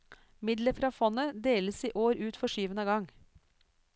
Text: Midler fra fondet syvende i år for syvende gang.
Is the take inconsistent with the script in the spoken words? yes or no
yes